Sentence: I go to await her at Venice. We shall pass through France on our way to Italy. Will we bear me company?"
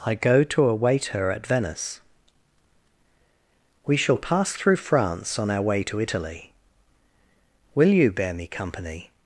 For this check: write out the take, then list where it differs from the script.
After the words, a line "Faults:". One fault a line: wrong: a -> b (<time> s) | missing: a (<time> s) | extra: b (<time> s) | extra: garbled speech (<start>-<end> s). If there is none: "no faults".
I go to await her at Venice. We shall pass through France on our way to Italy. Will you bear me company?"
Faults:
wrong: we -> you (7.9 s)